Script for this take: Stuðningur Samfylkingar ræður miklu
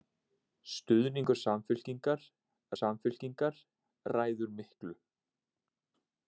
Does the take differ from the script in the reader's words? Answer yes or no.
yes